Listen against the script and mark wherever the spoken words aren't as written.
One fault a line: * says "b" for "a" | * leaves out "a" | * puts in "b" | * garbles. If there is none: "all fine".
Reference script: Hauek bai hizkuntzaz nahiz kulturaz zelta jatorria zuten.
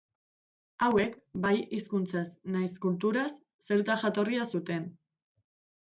all fine